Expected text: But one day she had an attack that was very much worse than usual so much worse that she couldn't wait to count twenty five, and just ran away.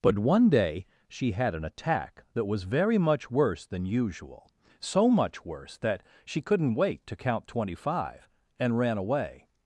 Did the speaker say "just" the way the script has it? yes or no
no